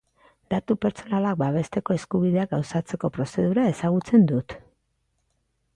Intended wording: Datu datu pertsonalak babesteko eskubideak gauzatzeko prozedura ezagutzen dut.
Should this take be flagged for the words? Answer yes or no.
yes